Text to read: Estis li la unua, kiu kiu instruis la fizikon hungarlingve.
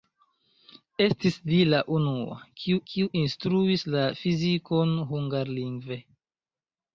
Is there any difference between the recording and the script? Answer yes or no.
no